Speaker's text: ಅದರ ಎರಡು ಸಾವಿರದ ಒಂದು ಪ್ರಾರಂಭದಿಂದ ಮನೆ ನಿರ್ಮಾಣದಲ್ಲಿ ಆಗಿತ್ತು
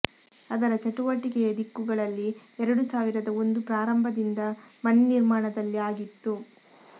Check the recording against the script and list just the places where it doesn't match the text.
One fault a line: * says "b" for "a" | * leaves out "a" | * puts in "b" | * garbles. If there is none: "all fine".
* puts in "ಚಟುವಟಿಕೆಯ ದಿಕ್ಕುಗಳಲ್ಲಿ"